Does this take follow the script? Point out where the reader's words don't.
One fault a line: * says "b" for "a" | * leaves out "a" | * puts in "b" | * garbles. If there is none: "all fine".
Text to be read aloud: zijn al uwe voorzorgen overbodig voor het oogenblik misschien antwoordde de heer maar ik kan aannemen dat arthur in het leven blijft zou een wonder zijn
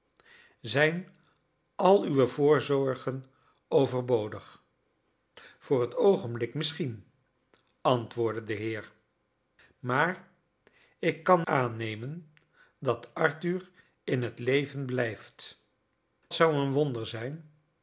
all fine